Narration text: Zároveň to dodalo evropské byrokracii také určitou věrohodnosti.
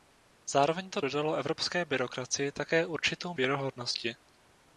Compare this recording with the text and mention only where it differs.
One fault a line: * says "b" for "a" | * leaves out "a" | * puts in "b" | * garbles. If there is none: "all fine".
all fine